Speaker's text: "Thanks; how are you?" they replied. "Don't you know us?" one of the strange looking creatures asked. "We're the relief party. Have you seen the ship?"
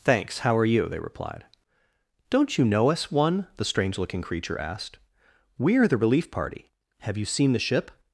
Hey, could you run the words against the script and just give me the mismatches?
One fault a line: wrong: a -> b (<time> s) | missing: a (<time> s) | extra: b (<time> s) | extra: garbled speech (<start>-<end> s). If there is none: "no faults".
missing: of (3.5 s)
wrong: creatures -> creature (4.2 s)